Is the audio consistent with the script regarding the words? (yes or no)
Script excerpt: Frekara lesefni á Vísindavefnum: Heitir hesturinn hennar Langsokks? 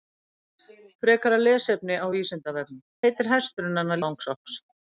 yes